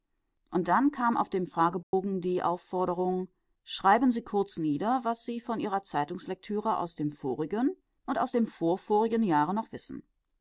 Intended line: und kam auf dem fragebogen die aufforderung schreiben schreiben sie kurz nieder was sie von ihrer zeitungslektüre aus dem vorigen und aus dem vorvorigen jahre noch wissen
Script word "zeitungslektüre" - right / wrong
right